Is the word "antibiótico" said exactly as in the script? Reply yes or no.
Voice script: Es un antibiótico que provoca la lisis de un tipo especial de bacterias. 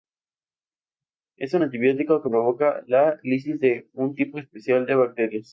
yes